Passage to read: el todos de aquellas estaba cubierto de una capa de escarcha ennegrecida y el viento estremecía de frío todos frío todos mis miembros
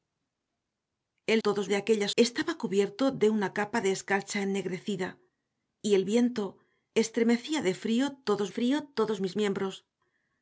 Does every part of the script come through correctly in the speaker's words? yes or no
yes